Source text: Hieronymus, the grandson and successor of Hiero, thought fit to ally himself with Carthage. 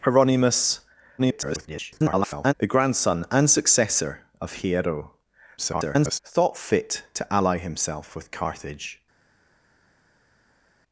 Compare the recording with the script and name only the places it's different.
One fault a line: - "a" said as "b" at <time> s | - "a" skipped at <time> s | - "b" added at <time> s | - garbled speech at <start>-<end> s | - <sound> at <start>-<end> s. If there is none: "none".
- garbled speech at 1.2-2.5 s
- garbled speech at 5.6-6.2 s